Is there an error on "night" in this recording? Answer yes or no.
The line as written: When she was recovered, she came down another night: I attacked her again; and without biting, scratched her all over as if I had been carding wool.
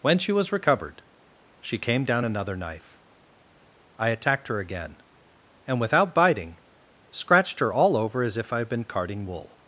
yes